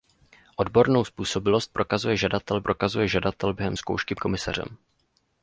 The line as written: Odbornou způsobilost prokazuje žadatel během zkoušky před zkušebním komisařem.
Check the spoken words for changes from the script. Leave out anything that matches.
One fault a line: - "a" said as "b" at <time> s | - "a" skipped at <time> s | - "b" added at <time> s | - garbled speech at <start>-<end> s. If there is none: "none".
- "prokazuje žadatel" added at 2.6 s
- "před zkušebním" skipped at 4.1 s